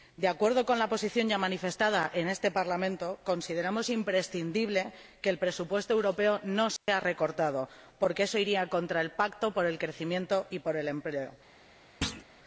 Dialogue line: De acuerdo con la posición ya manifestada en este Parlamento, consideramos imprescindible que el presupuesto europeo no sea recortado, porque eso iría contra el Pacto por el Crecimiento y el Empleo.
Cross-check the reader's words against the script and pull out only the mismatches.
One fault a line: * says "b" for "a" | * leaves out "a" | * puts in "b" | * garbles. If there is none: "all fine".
all fine